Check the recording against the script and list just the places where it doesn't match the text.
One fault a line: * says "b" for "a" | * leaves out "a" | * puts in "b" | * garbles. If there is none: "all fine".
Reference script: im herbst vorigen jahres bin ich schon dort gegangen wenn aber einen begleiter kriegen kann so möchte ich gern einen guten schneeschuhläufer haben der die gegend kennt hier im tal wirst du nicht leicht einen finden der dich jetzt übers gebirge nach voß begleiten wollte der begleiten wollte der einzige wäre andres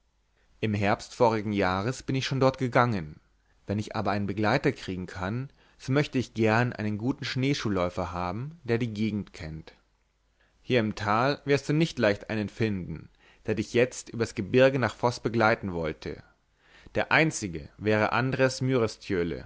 * puts in "ich"
* leaves out "begleiten wollte der"